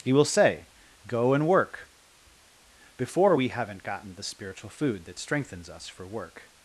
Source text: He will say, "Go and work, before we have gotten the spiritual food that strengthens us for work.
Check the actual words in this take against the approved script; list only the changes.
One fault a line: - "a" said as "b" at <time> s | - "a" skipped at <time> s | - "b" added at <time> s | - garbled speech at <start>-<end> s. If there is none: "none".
- "have" said as "haven't" at 3.5 s